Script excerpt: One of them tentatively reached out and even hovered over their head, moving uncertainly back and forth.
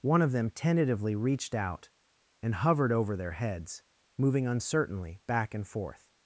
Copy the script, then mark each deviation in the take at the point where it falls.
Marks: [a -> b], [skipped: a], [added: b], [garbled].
One of them tentatively reached out and [skipped: even] hovered over their [head, -> heads] moving uncertainly back and forth.